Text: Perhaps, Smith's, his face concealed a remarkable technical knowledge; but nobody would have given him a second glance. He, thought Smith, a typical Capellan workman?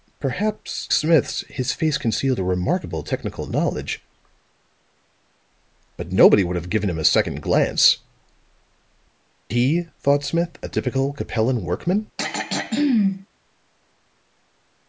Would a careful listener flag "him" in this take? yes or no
no